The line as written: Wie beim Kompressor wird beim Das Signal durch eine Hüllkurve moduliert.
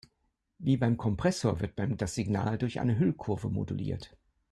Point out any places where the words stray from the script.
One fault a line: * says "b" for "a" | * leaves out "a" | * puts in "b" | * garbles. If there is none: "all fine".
all fine